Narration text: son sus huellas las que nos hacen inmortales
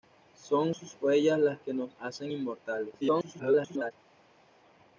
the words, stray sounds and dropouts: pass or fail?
fail